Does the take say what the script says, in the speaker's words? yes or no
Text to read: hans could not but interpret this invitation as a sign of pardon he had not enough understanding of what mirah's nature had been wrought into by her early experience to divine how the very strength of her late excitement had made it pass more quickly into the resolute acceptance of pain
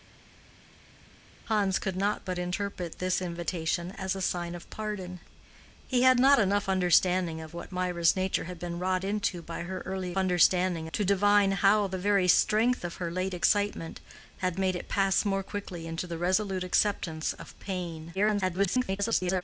no